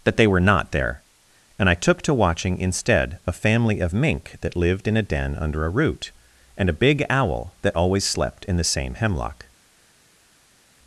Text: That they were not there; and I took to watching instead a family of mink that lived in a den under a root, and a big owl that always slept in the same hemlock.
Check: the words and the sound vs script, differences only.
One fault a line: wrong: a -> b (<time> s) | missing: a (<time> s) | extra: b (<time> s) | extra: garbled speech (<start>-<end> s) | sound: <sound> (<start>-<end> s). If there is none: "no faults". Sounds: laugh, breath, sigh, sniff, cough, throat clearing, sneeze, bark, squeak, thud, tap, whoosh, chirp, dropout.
no faults